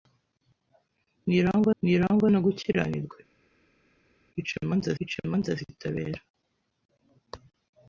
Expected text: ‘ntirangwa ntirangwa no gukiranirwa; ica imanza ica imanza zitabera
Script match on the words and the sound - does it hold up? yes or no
yes